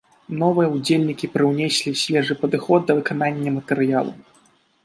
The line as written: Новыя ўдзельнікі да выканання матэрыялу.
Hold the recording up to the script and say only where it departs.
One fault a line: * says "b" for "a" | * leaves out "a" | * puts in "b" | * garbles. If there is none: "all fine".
* puts in "прыўнеслі свежы падыход"